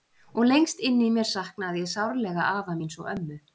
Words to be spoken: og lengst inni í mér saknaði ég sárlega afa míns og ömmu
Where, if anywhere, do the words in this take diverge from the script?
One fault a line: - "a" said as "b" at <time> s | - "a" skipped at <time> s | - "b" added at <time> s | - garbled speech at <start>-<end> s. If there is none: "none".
none